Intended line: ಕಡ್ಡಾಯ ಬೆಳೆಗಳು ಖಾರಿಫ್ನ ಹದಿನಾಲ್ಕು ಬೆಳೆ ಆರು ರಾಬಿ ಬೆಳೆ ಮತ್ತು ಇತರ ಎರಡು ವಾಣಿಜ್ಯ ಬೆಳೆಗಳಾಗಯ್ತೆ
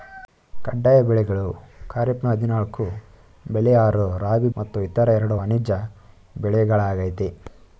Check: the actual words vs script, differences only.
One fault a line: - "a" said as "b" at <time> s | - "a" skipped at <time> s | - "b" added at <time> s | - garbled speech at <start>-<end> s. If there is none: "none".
- "ಬೆಳೆ" skipped at 4.5 s